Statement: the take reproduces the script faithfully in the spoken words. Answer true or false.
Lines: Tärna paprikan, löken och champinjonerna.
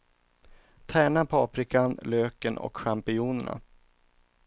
true